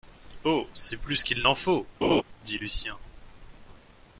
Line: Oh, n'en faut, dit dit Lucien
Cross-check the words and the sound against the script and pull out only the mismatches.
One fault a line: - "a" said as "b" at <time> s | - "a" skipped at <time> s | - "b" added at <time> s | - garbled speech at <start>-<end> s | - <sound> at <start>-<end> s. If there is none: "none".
- "c'est plus qu'il" added at 0.7 s
- laugh at 2.0-2.2 s
- "dit" skipped at 2.6 s